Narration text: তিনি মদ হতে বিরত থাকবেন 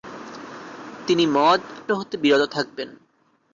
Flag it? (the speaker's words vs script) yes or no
no